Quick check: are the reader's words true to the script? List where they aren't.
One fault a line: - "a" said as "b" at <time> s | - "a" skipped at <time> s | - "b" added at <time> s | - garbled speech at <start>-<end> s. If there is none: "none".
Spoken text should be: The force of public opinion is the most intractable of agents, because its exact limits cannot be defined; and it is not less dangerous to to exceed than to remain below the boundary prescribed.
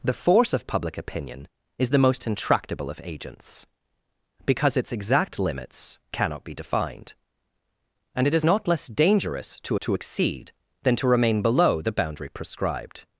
none